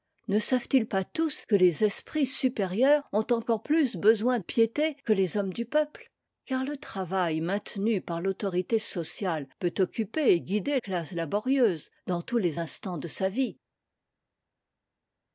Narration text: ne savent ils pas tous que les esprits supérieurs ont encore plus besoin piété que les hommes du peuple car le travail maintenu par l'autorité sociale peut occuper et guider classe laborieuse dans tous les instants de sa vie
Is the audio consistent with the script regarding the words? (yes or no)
yes